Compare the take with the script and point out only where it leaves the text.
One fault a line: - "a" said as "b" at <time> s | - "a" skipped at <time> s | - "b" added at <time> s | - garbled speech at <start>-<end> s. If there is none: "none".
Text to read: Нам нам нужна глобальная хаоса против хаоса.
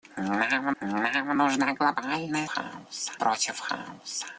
none